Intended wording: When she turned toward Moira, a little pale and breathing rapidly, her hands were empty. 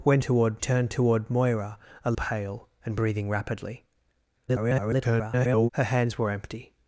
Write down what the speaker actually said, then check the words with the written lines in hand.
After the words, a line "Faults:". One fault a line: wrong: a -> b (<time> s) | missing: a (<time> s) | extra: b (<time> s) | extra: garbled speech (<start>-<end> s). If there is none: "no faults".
When toward turned toward Moira, a pale and breathing rapidly, [garbled] her hands were empty.
Faults:
wrong: she -> toward (0.2 s)
missing: little (2.1 s)
extra: garbled speech (4.5-5.7 s)